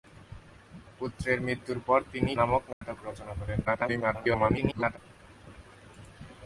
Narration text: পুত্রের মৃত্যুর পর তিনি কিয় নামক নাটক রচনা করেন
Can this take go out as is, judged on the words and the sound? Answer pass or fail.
fail